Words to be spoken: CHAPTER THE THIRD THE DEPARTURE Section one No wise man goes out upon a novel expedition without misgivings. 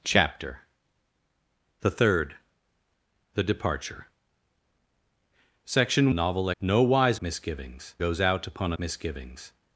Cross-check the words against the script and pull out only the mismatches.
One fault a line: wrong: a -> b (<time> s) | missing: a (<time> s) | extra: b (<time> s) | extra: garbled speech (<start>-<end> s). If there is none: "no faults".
wrong: one -> novel (6.1 s)
wrong: man -> misgivings (7.2 s)
missing: novel expedition without (8.8 s)